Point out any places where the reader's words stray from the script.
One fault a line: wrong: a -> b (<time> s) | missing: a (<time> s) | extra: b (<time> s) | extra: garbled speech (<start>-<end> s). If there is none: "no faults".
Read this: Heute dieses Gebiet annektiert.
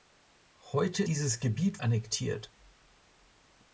no faults